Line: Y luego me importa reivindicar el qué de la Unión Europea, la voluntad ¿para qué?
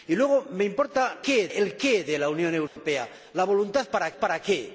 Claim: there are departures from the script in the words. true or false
true